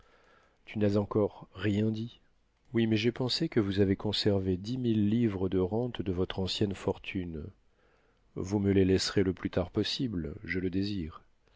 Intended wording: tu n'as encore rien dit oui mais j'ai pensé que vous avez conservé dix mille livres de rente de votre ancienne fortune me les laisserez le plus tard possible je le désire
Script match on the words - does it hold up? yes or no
no